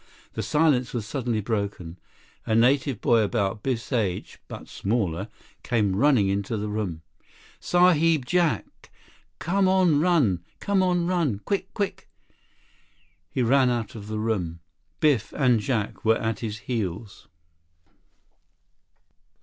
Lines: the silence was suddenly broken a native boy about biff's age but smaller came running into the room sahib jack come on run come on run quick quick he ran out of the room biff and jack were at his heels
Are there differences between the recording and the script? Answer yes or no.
no